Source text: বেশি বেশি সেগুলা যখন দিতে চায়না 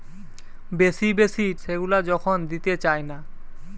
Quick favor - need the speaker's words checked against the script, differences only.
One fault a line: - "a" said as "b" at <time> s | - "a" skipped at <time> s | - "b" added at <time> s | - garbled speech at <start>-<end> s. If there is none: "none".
none